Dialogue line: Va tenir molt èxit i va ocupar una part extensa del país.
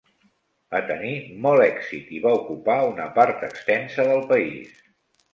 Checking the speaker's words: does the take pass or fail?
pass